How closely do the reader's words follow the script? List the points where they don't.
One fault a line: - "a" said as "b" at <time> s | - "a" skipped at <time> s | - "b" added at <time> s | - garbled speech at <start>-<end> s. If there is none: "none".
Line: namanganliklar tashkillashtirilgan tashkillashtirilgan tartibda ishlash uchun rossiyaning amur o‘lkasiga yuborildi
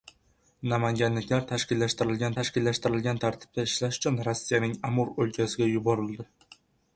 none